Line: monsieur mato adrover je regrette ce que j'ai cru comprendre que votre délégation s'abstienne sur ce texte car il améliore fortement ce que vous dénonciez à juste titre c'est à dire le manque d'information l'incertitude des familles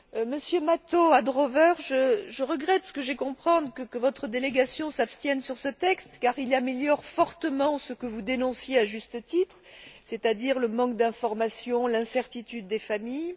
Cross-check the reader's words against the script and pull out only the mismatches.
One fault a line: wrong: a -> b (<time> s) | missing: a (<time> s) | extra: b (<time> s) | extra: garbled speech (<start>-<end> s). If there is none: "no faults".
missing: cru (3.1 s)